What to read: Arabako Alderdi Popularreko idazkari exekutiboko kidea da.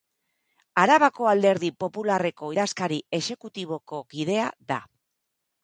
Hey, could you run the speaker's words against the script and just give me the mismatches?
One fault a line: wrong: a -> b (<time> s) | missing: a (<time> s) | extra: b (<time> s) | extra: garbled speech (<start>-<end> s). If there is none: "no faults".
no faults